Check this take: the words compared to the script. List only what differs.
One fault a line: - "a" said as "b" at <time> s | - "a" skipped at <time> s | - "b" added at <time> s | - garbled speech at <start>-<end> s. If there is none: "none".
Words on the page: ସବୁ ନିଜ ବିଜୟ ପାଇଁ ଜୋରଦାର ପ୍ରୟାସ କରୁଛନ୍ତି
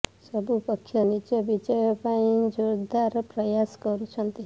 - "ପକ୍ଷ" added at 0.6 s